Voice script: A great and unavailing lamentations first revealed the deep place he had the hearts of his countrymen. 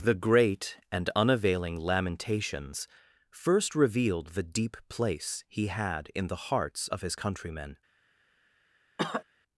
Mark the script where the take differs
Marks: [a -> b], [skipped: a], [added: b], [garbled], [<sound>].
[A -> The] great and unavailing lamentations first revealed the deep place he had [added: in] the hearts of his countrymen. [cough]